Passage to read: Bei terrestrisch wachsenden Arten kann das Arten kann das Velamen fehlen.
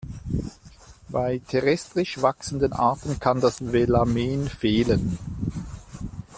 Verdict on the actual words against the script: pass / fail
fail